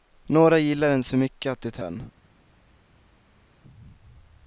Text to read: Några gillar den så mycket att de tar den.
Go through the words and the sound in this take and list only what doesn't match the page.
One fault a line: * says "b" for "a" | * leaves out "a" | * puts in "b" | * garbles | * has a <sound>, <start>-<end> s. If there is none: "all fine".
all fine